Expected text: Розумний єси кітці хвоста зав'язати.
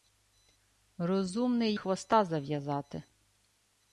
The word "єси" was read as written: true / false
false